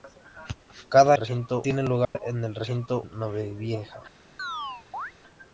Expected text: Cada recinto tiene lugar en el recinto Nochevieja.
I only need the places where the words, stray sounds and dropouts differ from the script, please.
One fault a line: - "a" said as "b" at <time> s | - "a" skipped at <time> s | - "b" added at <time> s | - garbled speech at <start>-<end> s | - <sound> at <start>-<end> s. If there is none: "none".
- dropout at 2.0-2.2 s
- chirp at 4.4-5.1 s